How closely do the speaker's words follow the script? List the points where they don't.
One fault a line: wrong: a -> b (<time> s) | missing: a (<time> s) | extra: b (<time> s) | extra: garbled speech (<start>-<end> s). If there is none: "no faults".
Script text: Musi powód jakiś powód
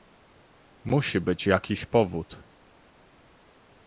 wrong: powód -> być (1.2 s)